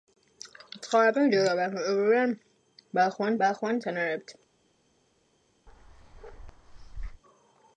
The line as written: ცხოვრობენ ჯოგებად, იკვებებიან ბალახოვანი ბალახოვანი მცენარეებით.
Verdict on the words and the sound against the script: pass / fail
fail